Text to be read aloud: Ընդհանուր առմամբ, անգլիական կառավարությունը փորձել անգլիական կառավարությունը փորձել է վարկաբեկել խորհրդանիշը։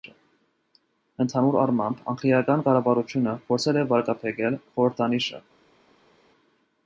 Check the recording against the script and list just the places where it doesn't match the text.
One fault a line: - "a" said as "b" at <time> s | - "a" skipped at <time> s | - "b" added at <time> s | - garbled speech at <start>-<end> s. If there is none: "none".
- "անգլիական կառավարությունը փորձել" skipped at 3.8 s